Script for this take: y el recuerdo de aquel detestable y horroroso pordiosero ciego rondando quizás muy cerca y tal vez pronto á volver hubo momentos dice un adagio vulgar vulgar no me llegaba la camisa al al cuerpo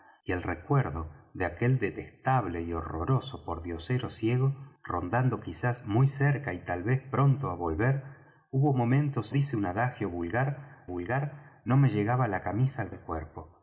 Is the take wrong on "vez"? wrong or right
right